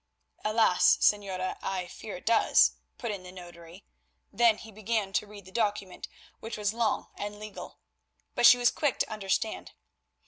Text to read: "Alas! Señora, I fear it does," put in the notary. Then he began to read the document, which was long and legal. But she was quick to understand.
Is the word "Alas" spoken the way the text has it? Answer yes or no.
yes